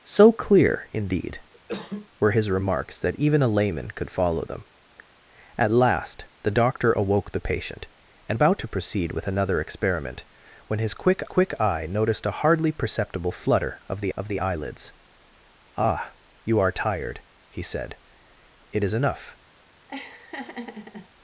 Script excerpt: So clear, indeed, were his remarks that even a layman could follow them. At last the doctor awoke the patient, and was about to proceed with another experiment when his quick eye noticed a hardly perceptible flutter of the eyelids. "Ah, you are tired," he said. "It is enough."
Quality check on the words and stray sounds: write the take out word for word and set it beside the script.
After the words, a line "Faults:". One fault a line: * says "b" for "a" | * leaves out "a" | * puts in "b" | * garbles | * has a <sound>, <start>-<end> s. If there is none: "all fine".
So clear, indeed, were his remarks that even a layman could follow them. At last the doctor awoke the patient, and about to proceed with another experiment when his quick quick eye noticed a hardly perceptible flutter of the of the eyelids. "Ah, you are tired," he said. "It is enough."
Faults:
* has a cough, 1.5-2.1 s
* leaves out "was"
* puts in "quick"
* puts in "of the"
* has a laugh, 19.9-21.1 s